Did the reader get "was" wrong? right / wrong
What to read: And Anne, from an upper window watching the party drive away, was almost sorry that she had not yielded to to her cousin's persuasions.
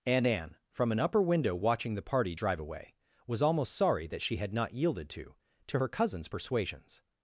right